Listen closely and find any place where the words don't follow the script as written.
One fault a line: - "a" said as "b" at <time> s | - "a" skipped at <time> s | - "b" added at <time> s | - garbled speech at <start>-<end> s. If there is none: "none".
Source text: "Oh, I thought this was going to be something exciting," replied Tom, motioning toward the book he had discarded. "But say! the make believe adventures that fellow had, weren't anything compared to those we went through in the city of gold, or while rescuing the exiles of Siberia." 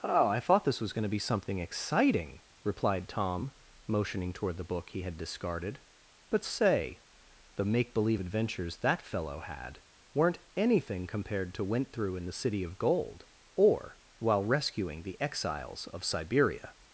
- "those we" skipped at 11.7 s